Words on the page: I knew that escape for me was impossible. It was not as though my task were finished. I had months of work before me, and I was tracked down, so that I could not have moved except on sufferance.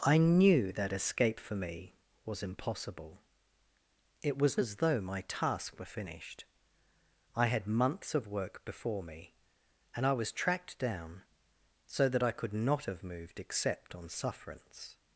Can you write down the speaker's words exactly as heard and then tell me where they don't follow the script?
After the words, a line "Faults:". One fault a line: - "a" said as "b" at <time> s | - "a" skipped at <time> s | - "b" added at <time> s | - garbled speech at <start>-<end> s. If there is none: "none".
I knew that escape for me was impossible. It was as though my task were finished. I had months of work before me, and I was tracked down, so that I could not have moved except on sufferance.
Faults:
- "not" skipped at 4.6 s